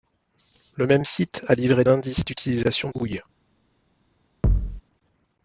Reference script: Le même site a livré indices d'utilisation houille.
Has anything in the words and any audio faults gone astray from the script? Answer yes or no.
yes